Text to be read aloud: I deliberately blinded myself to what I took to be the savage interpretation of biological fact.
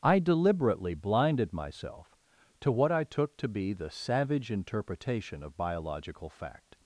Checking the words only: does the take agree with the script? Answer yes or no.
yes